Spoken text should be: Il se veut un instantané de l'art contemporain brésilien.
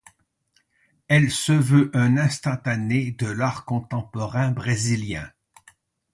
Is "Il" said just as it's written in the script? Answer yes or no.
no